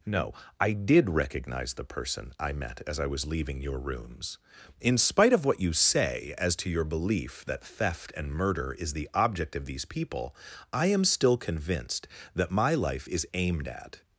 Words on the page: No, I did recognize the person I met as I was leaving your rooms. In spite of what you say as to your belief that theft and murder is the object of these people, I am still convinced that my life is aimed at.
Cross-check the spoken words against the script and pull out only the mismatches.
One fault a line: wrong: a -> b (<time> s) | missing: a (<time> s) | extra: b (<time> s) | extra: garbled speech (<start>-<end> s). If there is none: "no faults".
no faults